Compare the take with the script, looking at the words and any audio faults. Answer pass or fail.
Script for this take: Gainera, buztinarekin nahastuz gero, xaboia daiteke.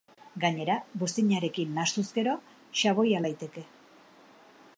pass